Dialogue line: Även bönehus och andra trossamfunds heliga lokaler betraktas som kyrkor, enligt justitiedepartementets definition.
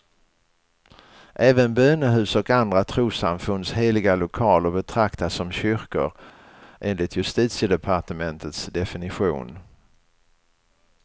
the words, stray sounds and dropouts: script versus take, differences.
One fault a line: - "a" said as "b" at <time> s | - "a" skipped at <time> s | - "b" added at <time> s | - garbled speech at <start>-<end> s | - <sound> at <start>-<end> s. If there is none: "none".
none